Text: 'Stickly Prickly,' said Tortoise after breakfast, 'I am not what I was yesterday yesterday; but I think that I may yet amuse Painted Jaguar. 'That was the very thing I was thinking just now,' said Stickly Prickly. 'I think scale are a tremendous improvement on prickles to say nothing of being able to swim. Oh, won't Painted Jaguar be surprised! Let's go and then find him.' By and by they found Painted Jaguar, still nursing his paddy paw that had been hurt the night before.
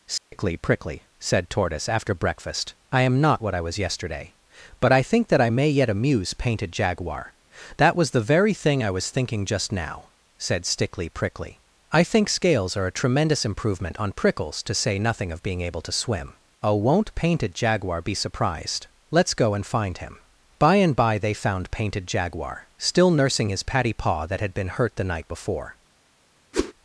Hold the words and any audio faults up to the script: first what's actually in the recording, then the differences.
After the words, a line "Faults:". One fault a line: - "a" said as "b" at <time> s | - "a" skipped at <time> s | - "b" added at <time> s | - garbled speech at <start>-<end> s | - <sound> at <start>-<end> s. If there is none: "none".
'Stickly Prickly,' said Tortoise after breakfast, 'I am not what I was yesterday; but I think that I may yet amuse Painted Jaguar. 'That was the very thing I was thinking just now,' said Stickly Prickly. 'I think scales are a tremendous improvement on prickles to say nothing of being able to swim. Oh, won't Painted Jaguar be surprised! Let's go and find him.' By and by they found Painted Jaguar, still nursing his paddy paw that had been hurt the night before.
Faults:
- dropout at 0.2-0.3 s
- "yesterday" skipped at 4.3 s
- "scale" said as "scales" at 12.3 s
- "then" skipped at 19.6 s
- whoosh at 26.5-26.7 s